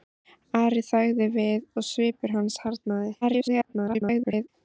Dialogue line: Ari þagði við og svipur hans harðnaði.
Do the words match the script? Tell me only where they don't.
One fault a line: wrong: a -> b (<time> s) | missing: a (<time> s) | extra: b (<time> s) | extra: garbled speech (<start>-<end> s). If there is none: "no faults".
extra: garbled speech (3.2-4.5 s)